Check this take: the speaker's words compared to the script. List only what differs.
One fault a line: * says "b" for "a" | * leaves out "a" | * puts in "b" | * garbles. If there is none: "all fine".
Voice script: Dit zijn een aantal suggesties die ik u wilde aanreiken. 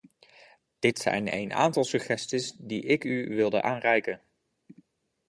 all fine